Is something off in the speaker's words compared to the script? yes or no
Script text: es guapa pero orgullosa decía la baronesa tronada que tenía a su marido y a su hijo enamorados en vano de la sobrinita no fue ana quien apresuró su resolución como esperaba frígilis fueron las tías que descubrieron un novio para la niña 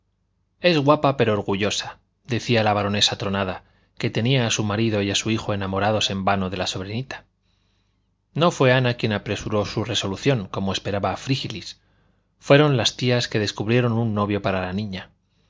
no